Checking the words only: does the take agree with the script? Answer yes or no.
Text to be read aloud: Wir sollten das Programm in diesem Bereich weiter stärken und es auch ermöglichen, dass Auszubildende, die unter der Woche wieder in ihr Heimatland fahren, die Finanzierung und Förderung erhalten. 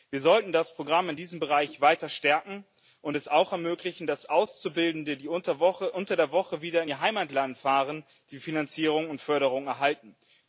yes